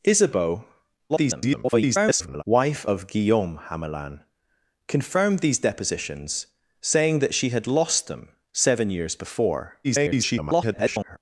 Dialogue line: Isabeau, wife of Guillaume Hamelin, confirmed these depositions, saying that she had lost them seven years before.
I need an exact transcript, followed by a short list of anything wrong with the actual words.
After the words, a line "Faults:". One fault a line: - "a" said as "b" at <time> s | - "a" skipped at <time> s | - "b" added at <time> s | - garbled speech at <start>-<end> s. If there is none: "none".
Isabeau, [garbled] wife of Guillaume Hamelin, confirmed these depositions, saying that she had lost them seven years before. [garbled]
Faults:
- garbled speech at 1.1-2.4 s
- garbled speech at 9.8-11.2 s